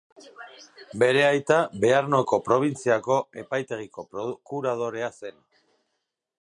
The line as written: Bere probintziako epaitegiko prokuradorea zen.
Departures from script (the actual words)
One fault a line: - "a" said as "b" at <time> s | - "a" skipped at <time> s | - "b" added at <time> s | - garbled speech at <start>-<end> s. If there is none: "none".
- "aita Bearnoko" added at 1.2 s